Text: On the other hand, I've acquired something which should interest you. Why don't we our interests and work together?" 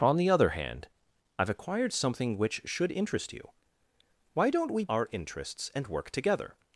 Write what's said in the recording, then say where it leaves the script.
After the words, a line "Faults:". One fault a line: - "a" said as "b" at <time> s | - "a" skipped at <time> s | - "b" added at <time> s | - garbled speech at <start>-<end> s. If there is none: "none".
On the other hand, I've acquired something which should interest you. Why don't we our interests and work together?"
Faults:
none